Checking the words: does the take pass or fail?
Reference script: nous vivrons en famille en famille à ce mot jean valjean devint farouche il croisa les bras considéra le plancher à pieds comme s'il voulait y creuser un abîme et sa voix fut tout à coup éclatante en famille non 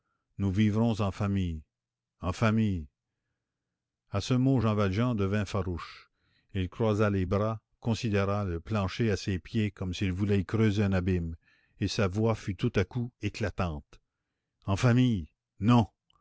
fail